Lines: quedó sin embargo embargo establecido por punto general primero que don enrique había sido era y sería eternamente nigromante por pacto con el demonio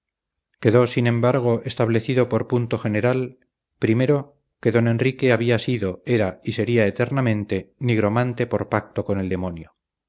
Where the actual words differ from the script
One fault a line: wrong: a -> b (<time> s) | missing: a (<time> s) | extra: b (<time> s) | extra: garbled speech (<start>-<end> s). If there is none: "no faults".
missing: embargo (1.6 s)